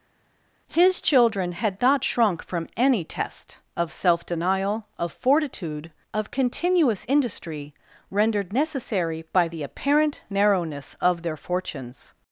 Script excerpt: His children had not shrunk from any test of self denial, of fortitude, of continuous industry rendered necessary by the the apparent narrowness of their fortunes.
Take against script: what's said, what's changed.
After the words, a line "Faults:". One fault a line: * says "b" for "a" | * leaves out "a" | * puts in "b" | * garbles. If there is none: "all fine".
His children had not shrunk from any test of self denial, of fortitude, of continuous industry rendered necessary by the apparent narrowness of their fortunes.
Faults:
* leaves out "the"